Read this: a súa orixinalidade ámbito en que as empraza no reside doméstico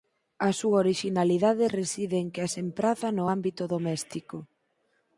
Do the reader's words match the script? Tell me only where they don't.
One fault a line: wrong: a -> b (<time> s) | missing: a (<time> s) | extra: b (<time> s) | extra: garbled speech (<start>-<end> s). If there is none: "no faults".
wrong: ámbito -> reside (1.8 s)
wrong: reside -> ámbito (3.3 s)